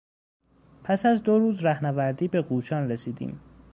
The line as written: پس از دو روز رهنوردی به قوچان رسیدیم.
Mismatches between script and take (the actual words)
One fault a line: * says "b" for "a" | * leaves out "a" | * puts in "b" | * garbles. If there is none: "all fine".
all fine